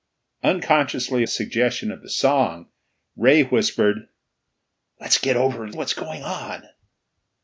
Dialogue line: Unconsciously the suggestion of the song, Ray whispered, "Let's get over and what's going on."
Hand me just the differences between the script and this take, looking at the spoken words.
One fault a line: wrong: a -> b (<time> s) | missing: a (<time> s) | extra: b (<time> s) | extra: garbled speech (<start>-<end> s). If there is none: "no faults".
no faults